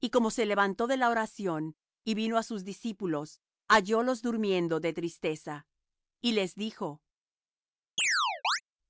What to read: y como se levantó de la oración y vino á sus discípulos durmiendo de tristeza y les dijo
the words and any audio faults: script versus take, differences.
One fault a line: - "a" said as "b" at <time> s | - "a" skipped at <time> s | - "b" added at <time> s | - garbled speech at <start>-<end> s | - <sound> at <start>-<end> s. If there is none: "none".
- "hallólos" added at 3.7 s
- chirp at 8.0-8.6 s